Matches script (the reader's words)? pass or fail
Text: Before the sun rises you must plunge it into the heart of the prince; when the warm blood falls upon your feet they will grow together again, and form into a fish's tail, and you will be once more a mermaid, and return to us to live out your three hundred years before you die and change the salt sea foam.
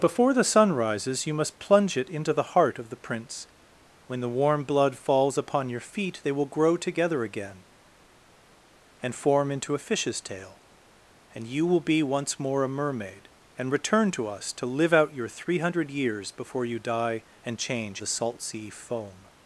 pass